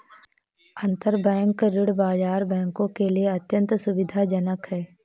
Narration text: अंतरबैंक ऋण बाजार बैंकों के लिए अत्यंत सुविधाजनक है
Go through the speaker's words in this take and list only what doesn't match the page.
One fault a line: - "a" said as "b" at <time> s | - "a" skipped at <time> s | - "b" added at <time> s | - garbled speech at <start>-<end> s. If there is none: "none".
none